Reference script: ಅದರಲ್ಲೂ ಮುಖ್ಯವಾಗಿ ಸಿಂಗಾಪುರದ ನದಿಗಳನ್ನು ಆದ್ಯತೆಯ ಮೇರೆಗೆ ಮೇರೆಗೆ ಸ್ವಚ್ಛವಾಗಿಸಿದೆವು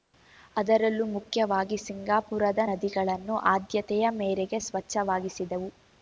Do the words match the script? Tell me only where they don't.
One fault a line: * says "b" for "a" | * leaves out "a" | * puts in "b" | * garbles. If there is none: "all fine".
* leaves out "ಮೇರೆಗೆ"